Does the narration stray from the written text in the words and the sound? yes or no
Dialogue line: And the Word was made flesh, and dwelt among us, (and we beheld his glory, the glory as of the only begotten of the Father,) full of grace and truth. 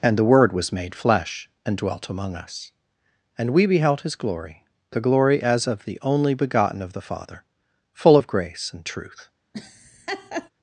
yes